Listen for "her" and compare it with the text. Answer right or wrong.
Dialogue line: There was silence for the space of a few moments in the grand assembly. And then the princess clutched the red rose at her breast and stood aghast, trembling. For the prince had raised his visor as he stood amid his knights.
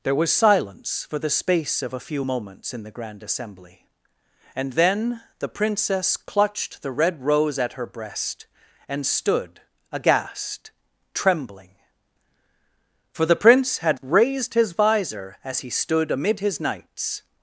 right